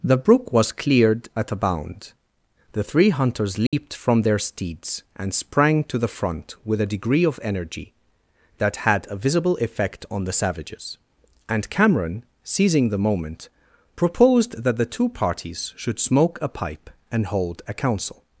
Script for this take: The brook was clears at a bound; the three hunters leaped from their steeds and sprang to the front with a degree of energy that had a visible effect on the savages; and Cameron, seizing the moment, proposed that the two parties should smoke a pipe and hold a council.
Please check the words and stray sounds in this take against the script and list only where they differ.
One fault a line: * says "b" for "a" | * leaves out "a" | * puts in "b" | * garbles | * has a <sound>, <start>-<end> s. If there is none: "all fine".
* says "cleared" for "clears"
* has a dropout, 3.7-3.7 s